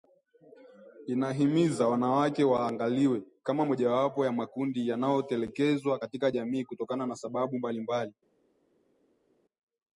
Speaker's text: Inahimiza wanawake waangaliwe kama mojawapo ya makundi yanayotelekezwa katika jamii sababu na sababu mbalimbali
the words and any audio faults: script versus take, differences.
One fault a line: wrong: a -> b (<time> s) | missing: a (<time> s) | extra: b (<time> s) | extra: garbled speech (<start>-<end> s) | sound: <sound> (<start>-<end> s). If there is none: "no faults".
wrong: sababu -> kutokana (6.7 s)